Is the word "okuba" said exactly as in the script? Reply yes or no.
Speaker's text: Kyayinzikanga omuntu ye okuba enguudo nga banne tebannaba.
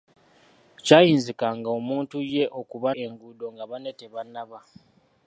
yes